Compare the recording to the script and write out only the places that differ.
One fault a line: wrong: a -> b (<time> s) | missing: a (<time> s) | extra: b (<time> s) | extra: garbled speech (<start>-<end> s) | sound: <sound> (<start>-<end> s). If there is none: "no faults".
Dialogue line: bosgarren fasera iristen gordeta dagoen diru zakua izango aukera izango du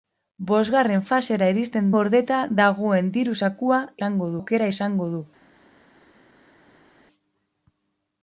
no faults